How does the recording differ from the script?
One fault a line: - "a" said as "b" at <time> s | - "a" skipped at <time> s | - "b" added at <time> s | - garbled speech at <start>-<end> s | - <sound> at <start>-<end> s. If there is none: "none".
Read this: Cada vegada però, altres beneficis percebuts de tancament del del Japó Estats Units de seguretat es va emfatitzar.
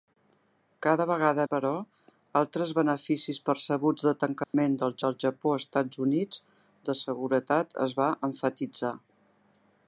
- dropout at 4.4-4.5 s